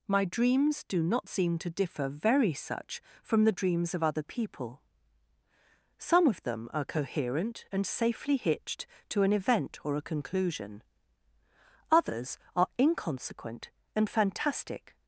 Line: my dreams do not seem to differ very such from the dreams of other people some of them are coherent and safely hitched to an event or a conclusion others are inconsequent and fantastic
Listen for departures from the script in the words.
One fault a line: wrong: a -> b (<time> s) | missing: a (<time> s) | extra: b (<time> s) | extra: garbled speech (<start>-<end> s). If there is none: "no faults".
no faults